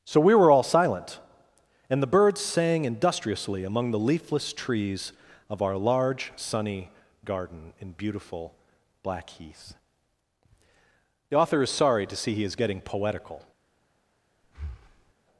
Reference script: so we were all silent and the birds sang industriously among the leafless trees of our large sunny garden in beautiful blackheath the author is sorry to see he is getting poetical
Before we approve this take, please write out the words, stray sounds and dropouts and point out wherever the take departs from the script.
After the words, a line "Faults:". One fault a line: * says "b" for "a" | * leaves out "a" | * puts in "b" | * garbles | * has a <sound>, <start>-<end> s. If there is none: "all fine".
so we were all silent and the birds sang industriously among the leafless trees of our large sunny garden in beautiful blackheath the author is sorry to see he is getting poetical
Faults:
* has a breath, 14.4-15.1 s